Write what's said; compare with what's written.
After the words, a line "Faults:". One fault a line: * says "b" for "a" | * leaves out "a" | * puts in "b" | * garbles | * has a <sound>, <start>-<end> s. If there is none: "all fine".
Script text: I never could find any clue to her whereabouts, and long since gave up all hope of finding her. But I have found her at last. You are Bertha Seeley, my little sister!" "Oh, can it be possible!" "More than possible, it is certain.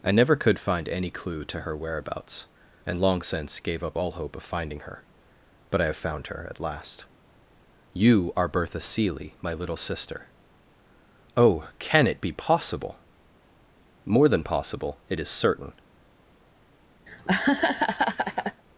I never could find any clue to her whereabouts, and long since gave up all hope of finding her. But I have found her at last. You are Bertha Seeley, my little sister!" "Oh, can it be possible!" "More than possible, it is certain.
Faults:
* has a laugh, 17.1-18.6 s